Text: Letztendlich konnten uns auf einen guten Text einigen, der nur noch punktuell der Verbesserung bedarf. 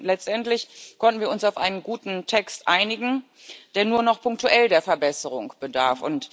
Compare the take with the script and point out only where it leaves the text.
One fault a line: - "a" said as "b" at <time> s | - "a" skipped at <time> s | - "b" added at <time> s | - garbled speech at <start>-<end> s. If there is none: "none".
- "wir" added at 1.2 s